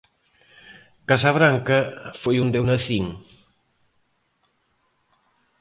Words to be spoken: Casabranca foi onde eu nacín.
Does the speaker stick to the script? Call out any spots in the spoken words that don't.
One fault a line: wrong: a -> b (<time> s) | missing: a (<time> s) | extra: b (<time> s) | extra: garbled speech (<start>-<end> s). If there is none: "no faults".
no faults